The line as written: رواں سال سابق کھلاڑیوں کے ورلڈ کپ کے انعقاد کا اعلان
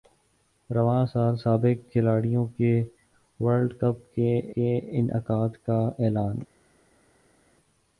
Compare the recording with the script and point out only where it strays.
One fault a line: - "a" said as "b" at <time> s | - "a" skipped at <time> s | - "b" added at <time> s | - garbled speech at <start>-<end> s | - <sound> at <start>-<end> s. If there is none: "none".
- "کے" added at 4.5 s